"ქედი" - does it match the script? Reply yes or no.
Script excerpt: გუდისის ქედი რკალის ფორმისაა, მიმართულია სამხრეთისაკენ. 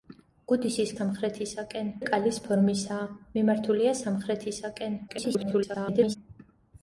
no